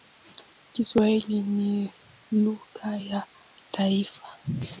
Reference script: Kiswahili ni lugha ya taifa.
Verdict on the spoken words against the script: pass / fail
pass